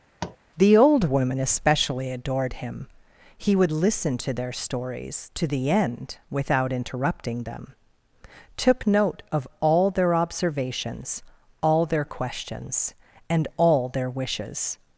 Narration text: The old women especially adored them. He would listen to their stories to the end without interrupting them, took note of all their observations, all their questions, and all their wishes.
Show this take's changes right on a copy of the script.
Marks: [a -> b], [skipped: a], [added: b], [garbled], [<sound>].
[tap] The old women especially adored [them. -> him] He would listen to their stories to the end without interrupting them, took note of all their observations, all their questions, and all their wishes.